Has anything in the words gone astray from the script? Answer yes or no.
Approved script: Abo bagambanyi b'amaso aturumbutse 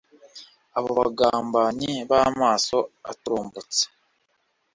no